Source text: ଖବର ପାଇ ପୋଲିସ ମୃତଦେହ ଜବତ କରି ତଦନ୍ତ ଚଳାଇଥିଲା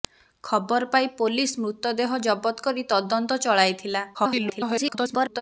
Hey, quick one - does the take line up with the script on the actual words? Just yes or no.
no